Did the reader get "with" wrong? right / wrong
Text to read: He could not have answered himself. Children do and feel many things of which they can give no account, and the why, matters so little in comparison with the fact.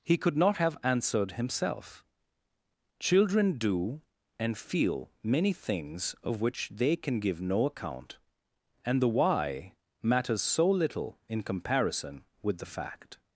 right